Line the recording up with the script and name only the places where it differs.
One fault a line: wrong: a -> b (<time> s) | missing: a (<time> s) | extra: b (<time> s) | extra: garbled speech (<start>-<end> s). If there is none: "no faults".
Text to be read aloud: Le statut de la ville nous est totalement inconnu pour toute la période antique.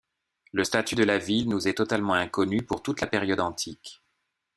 no faults